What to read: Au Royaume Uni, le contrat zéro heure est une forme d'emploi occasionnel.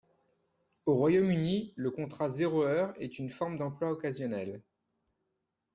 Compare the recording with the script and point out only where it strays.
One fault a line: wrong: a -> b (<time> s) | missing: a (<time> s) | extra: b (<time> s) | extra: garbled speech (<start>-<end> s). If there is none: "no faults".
no faults